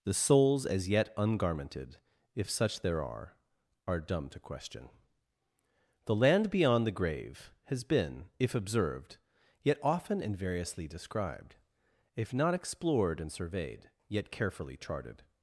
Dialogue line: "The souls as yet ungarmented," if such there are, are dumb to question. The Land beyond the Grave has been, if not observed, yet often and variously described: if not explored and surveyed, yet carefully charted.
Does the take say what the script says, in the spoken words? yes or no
no